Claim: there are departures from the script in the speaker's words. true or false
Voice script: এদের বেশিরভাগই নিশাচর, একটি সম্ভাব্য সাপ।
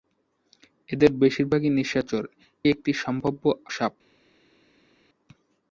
false